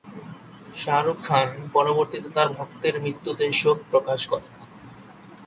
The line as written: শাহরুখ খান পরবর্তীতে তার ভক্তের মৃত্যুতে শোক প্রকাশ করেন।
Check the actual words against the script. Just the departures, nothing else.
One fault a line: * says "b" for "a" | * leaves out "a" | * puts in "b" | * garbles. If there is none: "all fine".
all fine